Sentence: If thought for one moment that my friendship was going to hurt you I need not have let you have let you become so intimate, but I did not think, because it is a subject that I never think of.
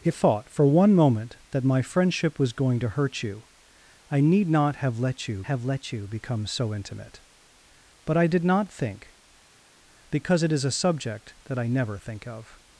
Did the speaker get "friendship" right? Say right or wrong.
right